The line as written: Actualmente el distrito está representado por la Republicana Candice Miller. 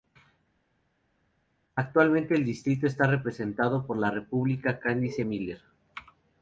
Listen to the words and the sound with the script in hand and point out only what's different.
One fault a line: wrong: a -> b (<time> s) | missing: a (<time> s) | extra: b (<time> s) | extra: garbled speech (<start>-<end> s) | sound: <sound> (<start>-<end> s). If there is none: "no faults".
no faults